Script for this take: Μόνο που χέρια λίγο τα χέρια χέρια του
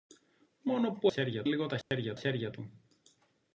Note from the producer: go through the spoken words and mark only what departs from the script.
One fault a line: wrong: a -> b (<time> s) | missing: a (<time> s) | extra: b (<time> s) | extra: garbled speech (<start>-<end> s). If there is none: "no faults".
no faults